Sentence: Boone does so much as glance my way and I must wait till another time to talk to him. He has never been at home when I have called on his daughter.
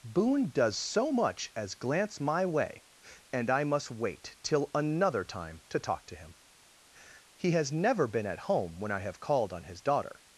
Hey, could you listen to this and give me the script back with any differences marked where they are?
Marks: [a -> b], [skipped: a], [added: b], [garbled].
Boone does so much as glance my way and I must wait till another time to talk to him. He has never been at home when I have called on his daughter.